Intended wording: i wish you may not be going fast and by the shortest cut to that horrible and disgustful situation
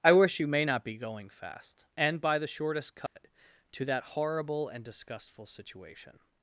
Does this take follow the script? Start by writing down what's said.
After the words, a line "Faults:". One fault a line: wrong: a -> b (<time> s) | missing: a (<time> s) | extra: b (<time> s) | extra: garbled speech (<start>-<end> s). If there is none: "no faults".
i wish you may not be going fast and by the shortest cut to that horrible and disgustful situation
Faults:
no faults